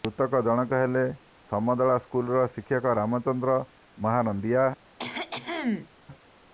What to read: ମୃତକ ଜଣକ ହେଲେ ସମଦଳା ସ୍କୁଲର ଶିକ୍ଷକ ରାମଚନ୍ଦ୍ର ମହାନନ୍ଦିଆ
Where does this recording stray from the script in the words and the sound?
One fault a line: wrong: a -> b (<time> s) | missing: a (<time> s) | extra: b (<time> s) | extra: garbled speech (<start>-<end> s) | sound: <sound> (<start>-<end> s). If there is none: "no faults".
sound: cough (5.0-5.9 s)